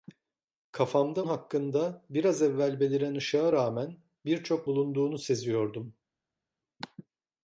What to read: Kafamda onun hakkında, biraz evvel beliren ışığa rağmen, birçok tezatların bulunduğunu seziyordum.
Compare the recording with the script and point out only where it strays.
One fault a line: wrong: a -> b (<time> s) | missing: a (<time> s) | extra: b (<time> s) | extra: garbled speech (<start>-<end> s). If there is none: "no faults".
missing: onun (1.3 s)
missing: tezatların (4.7 s)